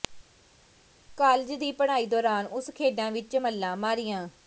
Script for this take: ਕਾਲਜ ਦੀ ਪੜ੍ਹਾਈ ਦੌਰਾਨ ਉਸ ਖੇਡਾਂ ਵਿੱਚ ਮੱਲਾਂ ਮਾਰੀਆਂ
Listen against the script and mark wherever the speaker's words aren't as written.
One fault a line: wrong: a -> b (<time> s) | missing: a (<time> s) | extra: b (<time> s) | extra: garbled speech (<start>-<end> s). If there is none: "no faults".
no faults